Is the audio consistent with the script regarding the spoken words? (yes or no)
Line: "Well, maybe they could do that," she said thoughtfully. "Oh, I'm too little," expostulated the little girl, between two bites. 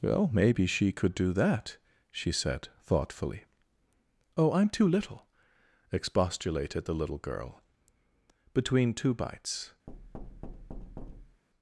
no